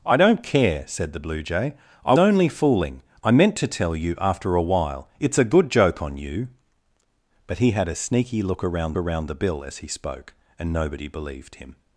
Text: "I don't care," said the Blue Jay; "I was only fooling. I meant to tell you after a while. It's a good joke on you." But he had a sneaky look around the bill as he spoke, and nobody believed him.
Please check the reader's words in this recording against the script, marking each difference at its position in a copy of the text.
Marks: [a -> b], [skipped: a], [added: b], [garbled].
"I don't care," said the Blue Jay; "I [skipped: was] only fooling. I meant to tell you after a while. It's a good joke on you." But he had a sneaky look around [added: around] the bill as he spoke, and nobody believed him.